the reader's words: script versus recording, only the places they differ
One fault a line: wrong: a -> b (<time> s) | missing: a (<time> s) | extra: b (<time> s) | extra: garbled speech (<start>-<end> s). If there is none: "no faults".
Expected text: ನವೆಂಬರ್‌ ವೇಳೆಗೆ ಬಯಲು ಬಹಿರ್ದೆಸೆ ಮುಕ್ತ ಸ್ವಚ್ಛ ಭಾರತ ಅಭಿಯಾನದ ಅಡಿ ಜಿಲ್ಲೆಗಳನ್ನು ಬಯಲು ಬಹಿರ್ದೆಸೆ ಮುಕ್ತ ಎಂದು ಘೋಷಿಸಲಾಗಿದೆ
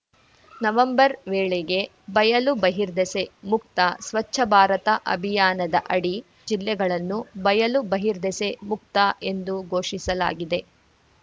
no faults